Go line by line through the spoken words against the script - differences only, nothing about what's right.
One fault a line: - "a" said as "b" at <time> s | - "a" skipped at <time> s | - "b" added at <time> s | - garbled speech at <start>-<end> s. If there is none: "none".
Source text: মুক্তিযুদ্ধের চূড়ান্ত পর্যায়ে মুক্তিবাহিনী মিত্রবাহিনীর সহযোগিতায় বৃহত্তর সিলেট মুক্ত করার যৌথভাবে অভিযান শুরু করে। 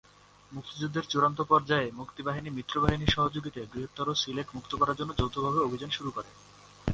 - "জন্য" added at 5.0 s